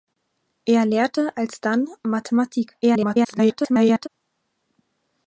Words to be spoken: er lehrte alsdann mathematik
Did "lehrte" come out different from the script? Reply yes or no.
no